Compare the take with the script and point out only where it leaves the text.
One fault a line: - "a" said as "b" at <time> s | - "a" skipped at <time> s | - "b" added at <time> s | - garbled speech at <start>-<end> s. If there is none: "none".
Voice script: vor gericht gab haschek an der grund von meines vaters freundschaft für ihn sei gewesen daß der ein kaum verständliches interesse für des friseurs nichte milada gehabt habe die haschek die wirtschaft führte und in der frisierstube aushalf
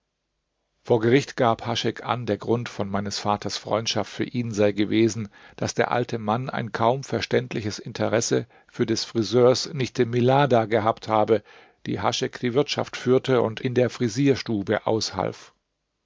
- "alte mann" added at 5.9 s